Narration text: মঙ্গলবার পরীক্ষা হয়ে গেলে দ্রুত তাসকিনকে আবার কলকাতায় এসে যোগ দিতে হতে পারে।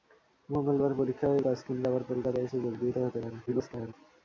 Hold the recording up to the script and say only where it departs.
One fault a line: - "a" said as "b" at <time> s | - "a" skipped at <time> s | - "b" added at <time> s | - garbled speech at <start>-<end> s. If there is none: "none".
- "গেলে দ্রুত" skipped at 1.4 s
- garbled speech at 3.5-3.9 s